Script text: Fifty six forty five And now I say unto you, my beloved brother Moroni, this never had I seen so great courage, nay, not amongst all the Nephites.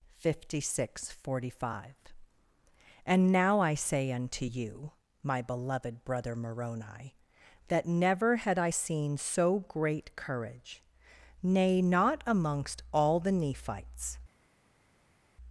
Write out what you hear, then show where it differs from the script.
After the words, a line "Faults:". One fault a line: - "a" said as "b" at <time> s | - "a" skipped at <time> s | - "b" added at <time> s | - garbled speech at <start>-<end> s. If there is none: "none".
Fifty six forty five And now I say unto you, my beloved brother Moroni, that never had I seen so great courage, nay, not amongst all the Nephites.
Faults:
- "this" said as "that" at 7.7 s